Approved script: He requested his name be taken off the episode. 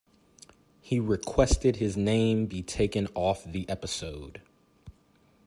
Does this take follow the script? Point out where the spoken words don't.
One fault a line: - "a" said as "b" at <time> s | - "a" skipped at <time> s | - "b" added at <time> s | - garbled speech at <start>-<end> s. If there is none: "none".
none